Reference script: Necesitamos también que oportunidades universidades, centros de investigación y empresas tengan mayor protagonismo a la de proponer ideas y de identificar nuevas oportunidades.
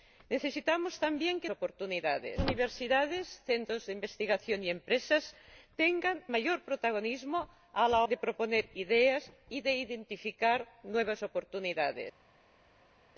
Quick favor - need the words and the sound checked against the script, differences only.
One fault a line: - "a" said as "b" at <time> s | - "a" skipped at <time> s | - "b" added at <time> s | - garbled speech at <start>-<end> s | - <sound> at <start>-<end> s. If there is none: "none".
none